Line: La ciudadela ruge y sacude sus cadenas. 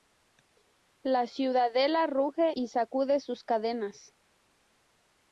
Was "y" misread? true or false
false